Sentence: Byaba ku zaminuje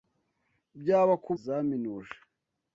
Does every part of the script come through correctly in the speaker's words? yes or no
yes